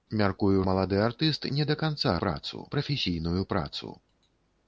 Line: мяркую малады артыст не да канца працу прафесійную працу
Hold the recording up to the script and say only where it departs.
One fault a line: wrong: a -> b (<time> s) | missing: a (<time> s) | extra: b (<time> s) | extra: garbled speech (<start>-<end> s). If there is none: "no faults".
no faults